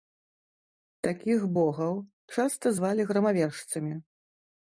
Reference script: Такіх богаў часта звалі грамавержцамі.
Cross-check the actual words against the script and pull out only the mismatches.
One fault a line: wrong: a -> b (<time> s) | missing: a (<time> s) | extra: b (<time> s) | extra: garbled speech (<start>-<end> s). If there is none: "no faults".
no faults